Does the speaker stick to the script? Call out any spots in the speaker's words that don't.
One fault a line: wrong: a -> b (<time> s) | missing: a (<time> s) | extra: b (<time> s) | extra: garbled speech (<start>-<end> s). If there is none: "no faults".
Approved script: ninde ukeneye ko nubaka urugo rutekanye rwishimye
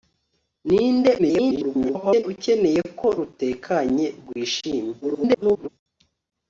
extra: garbled speech (1.2-2.2 s)
missing: nubaka urugo (3.1 s)
extra: garbled speech (5.0-5.7 s)